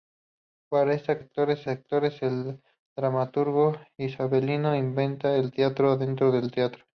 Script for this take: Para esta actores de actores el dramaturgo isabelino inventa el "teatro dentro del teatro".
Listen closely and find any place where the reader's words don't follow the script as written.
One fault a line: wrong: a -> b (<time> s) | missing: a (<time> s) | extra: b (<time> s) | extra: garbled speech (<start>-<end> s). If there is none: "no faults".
no faults